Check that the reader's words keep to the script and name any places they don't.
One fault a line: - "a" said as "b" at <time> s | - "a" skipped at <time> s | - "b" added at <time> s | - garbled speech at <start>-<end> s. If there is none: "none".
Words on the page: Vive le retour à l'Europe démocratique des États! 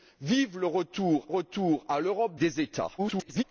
- "retour" added at 1.3 s
- "démocratique" skipped at 2.4 s
- garbled speech at 3.0-3.4 s